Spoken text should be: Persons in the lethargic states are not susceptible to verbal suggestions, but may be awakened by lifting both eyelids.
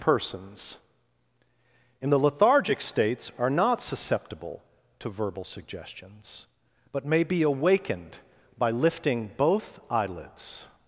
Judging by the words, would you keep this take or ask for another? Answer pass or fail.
pass